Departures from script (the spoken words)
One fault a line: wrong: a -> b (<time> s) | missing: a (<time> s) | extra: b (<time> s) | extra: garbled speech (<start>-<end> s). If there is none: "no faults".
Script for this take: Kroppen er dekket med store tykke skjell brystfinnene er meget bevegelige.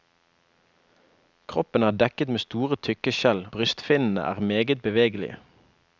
no faults